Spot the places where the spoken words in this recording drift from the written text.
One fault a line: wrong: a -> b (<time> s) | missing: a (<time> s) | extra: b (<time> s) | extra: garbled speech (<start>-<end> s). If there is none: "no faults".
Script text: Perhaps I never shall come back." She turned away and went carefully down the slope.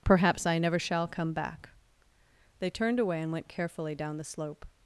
wrong: She -> They (2.6 s)